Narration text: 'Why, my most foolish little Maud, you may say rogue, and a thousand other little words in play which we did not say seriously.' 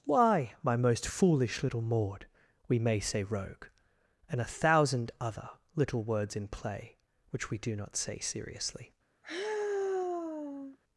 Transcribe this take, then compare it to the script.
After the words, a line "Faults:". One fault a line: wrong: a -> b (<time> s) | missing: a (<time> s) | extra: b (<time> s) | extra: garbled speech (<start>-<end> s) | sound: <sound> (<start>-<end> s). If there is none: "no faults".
'Why, my most foolish little Maud, we may say rogue, and a thousand other little words in play which we do not say seriously.'
Faults:
wrong: you -> we (2.7 s)
wrong: did -> do (7.6 s)
sound: sigh (9.2-10.8 s)